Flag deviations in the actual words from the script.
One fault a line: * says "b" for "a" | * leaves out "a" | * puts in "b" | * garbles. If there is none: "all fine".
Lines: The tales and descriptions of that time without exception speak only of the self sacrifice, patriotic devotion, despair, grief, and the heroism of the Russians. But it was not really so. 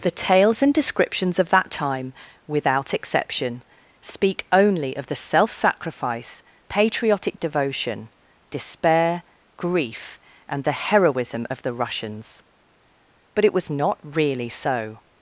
all fine